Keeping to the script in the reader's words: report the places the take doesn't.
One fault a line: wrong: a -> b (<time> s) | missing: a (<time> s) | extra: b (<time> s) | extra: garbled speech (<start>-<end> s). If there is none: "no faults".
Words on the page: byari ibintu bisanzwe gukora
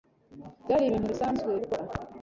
no faults